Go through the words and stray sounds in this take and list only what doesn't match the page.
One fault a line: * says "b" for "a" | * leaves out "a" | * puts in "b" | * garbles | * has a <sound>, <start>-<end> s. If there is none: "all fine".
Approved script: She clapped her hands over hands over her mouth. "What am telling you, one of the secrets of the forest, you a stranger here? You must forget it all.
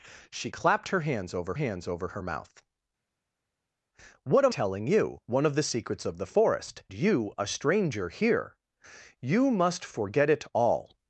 all fine